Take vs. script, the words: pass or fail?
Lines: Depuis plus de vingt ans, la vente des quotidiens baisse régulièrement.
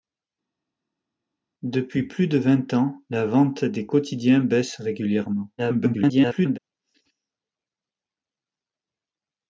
fail